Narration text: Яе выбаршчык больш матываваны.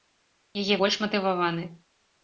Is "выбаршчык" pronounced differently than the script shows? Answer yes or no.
yes